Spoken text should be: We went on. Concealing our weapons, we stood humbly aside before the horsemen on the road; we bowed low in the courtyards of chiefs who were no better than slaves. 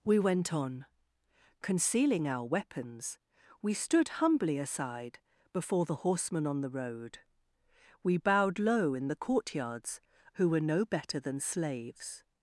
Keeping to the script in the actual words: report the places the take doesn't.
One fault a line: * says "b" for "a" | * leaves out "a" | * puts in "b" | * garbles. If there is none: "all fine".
* leaves out "of chiefs"